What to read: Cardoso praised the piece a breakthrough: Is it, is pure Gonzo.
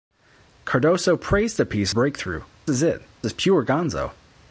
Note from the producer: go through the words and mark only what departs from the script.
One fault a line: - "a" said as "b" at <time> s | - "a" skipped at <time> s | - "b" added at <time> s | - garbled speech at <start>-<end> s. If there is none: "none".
none